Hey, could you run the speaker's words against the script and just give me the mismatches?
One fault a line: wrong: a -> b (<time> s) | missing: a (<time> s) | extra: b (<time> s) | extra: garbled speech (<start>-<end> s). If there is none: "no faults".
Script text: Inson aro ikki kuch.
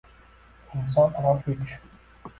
missing: ikki (1.3 s)